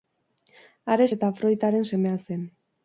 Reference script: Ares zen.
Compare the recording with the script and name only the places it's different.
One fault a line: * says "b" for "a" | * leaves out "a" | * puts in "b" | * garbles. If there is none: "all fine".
* puts in "eta Afroditaren semea"